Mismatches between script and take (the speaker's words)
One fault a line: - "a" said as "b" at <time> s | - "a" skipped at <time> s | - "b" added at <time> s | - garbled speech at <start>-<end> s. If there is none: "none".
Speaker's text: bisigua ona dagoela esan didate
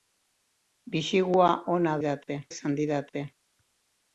- "dagoela" said as "didate" at 2.0 s